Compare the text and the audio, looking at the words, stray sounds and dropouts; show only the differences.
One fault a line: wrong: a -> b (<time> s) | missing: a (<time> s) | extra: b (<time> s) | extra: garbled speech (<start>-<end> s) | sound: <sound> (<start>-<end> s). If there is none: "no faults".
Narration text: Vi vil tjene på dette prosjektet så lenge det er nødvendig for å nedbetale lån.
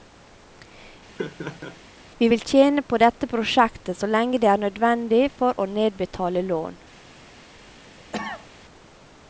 sound: laugh (1.2-1.8 s)
sound: cough (8.1-8.5 s)